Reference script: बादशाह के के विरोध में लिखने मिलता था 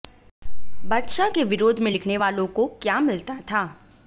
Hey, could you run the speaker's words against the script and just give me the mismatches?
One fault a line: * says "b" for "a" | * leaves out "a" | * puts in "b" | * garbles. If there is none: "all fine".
* leaves out "के"
* puts in "वालों को क्या"